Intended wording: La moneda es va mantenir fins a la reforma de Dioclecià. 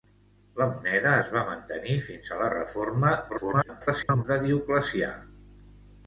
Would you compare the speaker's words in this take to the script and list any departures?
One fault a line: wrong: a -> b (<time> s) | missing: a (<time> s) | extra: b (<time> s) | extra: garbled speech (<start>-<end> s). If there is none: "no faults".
extra: garbled speech (3.3-4.2 s)